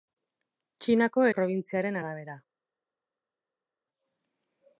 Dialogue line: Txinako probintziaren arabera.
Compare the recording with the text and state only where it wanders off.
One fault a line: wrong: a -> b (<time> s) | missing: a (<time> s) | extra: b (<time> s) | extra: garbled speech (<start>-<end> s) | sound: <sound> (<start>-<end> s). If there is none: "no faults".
no faults